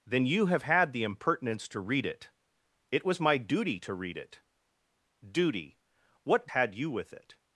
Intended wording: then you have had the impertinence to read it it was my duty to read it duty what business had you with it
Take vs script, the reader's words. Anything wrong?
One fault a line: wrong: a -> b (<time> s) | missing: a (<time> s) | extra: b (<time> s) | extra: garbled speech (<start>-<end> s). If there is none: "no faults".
missing: business (6.5 s)